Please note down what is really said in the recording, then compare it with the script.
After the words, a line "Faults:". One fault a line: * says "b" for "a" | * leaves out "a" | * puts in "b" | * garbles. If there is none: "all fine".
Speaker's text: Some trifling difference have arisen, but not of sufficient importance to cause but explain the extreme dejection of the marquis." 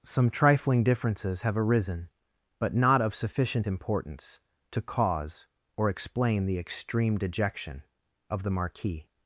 Some trifling differences have arisen, but not of sufficient importance to cause or explain the extreme dejection of the marquis."
Faults:
* says "differences" for "difference"
* says "or" for "but"